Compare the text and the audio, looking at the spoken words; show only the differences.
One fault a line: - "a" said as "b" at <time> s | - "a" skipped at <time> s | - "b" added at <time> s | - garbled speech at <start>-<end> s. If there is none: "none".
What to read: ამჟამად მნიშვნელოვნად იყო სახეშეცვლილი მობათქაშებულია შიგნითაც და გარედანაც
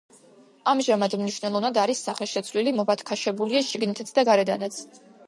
- "იყო" said as "არის" at 1.8 s